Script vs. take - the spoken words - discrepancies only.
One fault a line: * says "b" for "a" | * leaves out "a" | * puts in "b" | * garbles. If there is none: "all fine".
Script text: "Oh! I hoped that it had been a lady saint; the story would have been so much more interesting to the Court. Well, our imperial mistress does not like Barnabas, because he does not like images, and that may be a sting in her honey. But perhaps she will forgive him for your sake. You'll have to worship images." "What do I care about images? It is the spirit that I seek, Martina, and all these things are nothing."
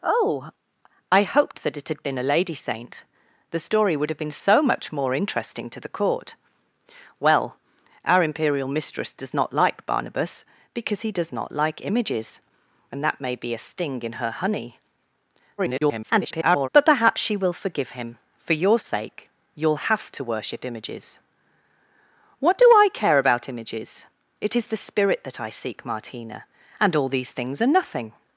* garbles